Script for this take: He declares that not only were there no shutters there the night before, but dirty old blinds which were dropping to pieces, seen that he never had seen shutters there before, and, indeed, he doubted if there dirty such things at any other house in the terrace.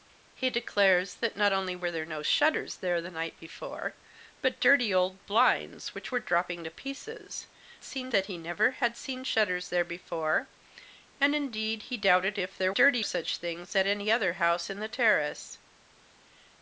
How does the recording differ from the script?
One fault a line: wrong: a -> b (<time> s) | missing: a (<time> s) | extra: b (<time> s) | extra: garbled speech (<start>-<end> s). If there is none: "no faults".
no faults